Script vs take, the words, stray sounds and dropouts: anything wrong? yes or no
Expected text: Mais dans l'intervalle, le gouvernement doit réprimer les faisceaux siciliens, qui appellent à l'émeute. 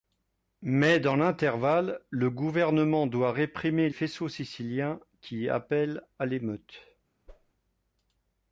yes